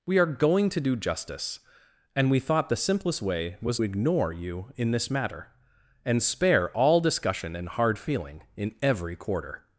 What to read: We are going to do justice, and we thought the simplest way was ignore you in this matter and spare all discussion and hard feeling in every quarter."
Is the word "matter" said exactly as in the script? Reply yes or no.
yes